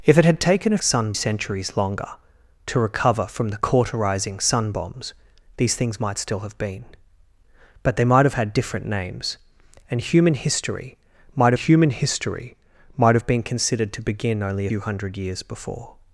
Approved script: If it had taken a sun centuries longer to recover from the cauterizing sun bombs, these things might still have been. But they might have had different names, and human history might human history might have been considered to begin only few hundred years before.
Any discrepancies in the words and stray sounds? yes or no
no